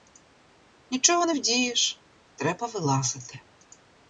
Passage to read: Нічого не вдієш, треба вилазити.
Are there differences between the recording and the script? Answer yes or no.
no